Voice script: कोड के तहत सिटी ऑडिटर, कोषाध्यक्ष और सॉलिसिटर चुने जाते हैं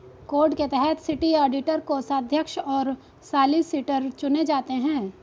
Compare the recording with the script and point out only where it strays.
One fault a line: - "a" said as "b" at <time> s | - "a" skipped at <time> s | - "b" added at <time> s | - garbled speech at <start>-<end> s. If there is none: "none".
none